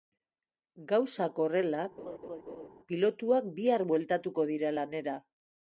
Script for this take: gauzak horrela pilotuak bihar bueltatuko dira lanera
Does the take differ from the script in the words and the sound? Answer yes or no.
yes